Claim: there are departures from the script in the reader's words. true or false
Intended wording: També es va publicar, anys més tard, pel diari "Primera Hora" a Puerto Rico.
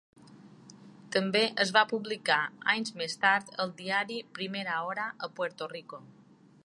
true